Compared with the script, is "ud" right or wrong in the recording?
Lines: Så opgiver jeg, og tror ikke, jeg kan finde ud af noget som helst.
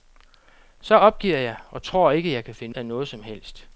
wrong